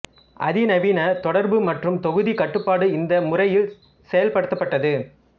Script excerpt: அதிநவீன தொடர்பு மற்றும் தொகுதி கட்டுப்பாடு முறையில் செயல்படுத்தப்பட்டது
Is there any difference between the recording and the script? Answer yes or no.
yes